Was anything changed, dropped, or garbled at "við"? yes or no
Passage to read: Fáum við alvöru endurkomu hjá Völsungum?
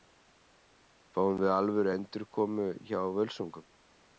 no